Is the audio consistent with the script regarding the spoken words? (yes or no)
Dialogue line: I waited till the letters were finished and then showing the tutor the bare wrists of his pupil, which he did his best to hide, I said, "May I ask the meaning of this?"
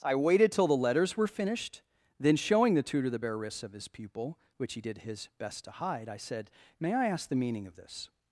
no